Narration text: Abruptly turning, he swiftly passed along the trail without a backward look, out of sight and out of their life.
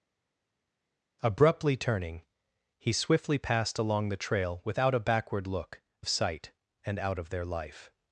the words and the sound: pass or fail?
fail